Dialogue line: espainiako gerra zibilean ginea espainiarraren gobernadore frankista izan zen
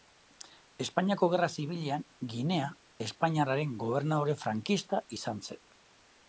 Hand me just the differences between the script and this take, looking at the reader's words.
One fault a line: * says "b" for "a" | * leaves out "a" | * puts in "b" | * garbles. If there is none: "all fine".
all fine